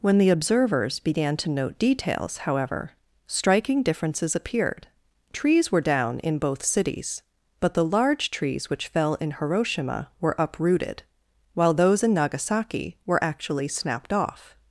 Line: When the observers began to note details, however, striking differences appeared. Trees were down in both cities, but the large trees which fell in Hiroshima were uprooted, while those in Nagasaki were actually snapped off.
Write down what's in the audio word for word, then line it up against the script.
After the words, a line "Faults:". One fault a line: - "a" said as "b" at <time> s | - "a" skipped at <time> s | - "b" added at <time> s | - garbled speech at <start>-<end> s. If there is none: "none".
When the observers began to note details, however, striking differences appeared. Trees were down in both cities, but the large trees which fell in Hiroshima were uprooted, while those in Nagasaki were actually snapped off.
Faults:
none